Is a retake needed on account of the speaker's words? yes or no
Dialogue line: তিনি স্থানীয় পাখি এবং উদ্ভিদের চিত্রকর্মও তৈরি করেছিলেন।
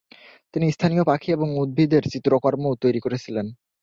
no